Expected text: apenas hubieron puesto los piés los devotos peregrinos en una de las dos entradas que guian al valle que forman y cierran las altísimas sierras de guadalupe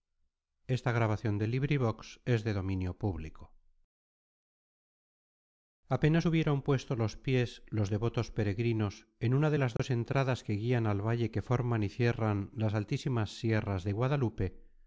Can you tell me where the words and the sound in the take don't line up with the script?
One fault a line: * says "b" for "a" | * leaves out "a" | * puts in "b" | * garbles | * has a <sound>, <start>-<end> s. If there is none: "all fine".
* has a dropout, 9.8-9.8 s